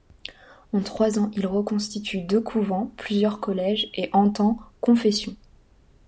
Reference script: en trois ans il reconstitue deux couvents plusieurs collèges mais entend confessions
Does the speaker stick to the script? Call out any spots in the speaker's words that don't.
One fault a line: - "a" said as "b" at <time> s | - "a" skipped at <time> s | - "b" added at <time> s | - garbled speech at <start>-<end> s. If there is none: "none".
- "mais" said as "et" at 3.9 s